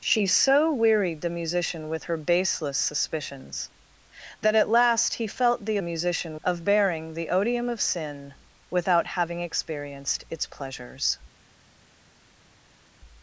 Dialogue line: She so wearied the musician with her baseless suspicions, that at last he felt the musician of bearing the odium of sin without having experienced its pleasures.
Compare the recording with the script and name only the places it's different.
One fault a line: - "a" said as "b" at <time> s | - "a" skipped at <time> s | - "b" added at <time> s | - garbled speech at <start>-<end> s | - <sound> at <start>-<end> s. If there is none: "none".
none